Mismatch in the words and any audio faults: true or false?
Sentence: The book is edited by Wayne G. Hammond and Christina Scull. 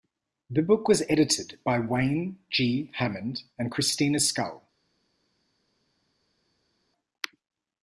true